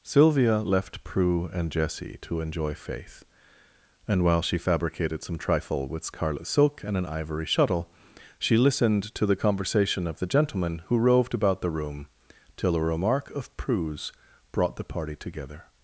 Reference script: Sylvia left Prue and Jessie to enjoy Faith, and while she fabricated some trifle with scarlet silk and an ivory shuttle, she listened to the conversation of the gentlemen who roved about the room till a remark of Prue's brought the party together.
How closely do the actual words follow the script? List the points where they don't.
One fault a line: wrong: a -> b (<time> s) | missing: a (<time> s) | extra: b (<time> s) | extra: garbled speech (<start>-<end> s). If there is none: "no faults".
no faults